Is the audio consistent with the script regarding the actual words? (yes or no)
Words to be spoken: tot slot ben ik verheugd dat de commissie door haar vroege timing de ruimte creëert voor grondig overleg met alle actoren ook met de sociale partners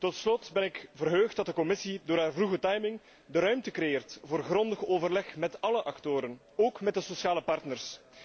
yes